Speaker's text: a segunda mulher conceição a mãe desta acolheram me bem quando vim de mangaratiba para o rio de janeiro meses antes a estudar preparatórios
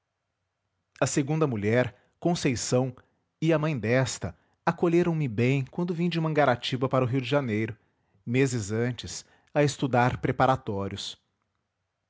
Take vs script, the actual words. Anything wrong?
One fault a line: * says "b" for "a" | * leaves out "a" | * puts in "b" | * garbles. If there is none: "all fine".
* puts in "e"